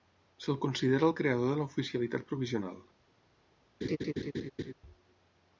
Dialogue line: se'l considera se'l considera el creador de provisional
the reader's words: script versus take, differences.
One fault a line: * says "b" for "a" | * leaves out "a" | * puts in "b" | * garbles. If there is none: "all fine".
* leaves out "se'l considera"
* puts in "l'oficialitat"